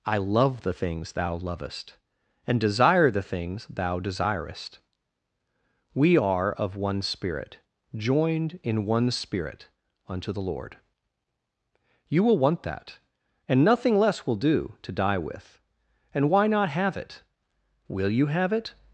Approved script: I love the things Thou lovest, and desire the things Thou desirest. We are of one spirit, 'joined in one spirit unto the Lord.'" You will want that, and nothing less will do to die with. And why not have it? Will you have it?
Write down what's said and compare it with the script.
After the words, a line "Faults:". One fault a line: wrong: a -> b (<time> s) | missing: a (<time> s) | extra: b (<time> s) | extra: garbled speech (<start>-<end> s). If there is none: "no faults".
I love the things Thou lovest, and desire the things Thou desirest. We are of one spirit, 'joined in one spirit unto the Lord.'" You will want that, and nothing less will do to die with. And why not have it? Will you have it?
Faults:
no faults